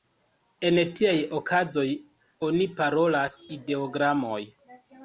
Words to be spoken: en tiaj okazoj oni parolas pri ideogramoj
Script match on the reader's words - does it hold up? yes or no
no